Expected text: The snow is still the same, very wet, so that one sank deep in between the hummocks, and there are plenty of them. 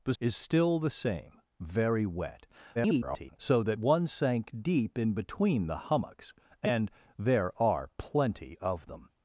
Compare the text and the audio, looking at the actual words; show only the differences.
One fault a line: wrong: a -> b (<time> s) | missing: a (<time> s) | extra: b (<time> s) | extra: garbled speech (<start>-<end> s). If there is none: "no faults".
missing: snow (0.1 s)
extra: garbled speech (2.7-3.4 s)